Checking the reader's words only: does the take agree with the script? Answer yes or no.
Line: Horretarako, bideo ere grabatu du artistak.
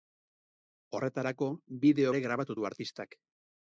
yes